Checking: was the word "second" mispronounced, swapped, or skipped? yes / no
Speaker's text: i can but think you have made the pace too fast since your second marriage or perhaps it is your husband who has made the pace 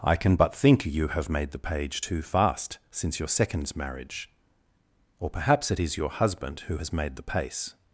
yes